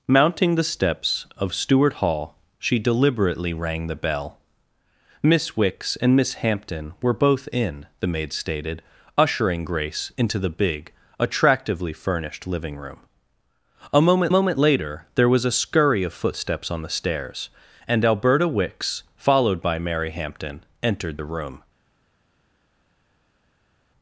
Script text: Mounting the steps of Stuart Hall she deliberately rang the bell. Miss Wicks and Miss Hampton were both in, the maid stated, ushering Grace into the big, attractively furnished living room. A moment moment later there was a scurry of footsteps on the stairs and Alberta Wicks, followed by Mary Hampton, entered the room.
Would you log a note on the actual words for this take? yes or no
no